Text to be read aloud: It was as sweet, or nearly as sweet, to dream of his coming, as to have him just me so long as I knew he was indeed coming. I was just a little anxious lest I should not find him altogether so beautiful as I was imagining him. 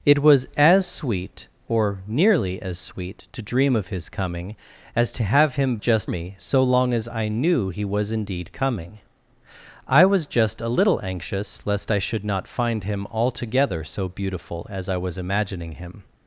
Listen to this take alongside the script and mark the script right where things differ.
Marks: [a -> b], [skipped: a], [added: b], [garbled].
It was as sweet, or nearly as sweet, to dream of his coming, as to have him just me so long as I knew he was indeed coming. I was just a little anxious lest I should not find him altogether so beautiful as I was imagining him.